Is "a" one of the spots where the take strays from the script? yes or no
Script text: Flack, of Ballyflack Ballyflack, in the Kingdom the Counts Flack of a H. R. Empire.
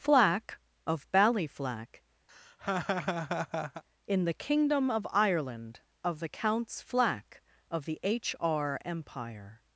yes